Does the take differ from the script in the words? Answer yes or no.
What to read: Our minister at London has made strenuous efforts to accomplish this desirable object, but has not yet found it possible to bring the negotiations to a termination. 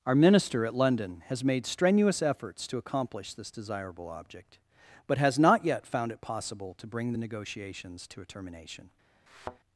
no